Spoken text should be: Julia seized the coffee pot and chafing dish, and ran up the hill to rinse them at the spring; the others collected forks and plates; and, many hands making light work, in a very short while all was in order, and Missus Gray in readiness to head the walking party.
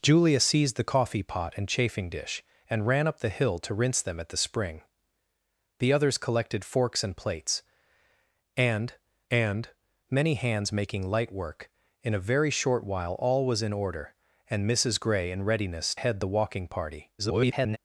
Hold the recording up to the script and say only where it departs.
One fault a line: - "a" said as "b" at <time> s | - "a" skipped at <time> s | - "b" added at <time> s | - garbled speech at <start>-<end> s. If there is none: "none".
- "and" added at 9.3 s
- "to" skipped at 16.0 s
- garbled speech at 17.2-17.8 s